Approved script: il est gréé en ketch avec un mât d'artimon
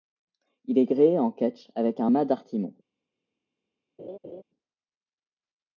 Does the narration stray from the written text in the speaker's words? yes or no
no